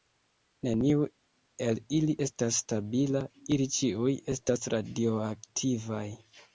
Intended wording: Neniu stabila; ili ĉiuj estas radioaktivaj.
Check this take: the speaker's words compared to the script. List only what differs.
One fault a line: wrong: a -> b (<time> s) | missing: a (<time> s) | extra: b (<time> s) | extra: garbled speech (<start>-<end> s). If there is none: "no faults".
extra: el ili estas (1.6 s)